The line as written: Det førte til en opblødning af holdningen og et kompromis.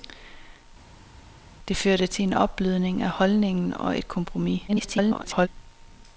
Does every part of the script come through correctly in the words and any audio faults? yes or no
no